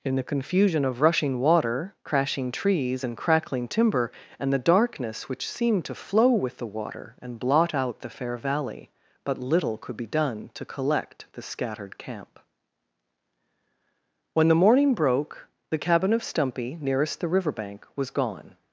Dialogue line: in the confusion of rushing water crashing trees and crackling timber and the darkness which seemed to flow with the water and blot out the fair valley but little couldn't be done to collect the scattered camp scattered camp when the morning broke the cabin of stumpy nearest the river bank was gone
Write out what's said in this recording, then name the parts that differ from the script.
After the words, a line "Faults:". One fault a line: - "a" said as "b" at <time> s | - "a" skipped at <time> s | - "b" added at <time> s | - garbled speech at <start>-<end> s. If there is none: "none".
in the confusion of rushing water crashing trees and crackling timber and the darkness which seemed to flow with the water and blot out the fair valley but little could be done to collect the scattered camp when the morning broke the cabin of stumpy nearest the river bank was gone
Faults:
- "couldn't" said as "could" at 9.8 s
- "scattered camp" skipped at 12.4 s